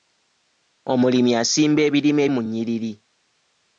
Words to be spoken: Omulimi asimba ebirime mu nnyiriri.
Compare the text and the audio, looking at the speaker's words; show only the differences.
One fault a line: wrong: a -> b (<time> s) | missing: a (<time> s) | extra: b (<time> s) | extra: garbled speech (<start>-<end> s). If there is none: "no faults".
no faults